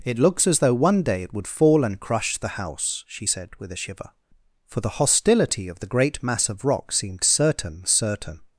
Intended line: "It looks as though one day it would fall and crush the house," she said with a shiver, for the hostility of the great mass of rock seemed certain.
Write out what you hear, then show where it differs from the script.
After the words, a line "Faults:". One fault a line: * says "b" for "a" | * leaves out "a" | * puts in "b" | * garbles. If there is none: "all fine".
"It looks as though one day it would fall and crush the house," she said with a shiver, for the hostility of the great mass of rock seemed certain certain.
Faults:
* puts in "certain"